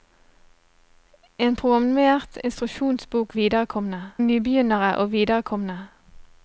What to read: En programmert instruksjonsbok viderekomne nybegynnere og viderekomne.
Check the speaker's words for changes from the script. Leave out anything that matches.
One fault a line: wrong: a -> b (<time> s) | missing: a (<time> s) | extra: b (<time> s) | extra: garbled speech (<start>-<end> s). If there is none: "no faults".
no faults